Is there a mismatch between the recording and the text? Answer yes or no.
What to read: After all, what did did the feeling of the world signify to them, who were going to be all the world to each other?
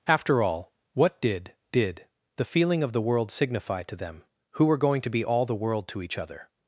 no